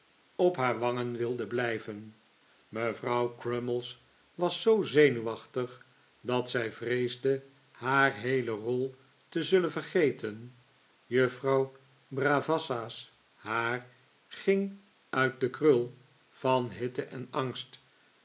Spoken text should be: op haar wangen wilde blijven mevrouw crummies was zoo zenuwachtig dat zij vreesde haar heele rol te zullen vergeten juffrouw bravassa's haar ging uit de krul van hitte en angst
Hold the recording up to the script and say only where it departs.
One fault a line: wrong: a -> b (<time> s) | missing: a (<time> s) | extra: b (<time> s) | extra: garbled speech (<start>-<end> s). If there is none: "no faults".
no faults